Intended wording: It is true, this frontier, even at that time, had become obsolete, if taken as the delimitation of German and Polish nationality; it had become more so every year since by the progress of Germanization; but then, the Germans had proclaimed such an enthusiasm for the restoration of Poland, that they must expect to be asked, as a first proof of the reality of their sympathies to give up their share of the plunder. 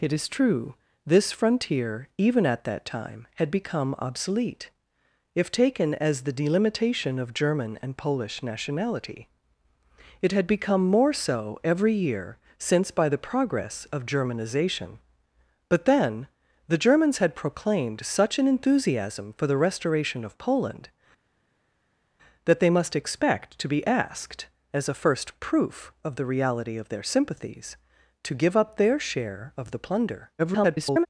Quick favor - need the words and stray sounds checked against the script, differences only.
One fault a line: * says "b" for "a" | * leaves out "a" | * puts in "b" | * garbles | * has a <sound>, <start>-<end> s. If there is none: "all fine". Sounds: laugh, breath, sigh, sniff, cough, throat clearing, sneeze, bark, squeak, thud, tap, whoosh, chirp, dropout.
* garbles